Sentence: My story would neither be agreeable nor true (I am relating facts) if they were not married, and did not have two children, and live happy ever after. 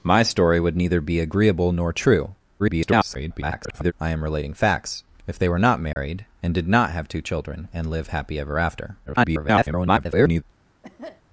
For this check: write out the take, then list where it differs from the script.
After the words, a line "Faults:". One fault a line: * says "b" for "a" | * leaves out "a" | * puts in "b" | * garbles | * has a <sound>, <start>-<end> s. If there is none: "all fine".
My story would neither be agreeable nor true [garbled] (I am relating facts) if they were not married, and did not have two children, and live happy ever after. [garbled]
Faults:
* garbles
* has a dropout, 5.9-6.0 s
* garbles
* has a cough, 10.8-11.2 s